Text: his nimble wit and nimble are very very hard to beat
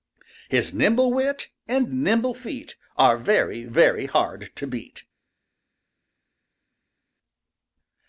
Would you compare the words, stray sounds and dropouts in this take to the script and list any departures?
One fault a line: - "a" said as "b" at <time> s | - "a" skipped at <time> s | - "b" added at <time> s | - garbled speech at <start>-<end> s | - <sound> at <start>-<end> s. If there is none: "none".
- "feet" added at 2.3 s